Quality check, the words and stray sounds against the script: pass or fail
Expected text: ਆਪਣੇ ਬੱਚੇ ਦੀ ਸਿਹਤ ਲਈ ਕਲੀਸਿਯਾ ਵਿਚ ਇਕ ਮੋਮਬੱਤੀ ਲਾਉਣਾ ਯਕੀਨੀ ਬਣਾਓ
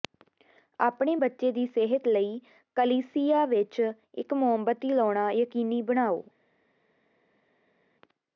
pass